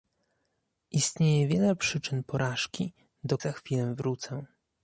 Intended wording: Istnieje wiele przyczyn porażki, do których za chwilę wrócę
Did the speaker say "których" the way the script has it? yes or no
no